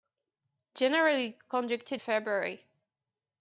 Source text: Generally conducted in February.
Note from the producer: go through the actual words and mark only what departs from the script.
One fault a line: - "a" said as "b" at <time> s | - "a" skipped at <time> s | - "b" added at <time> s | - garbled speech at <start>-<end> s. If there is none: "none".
- "in" skipped at 2.0 s